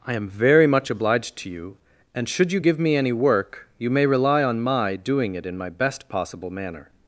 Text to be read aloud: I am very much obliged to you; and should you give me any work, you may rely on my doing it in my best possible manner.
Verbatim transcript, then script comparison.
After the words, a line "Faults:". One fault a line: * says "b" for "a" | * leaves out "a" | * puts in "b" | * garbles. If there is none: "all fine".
I am very much obliged to you; and should you give me any work, you may rely on my doing it in my best possible manner.
Faults:
all fine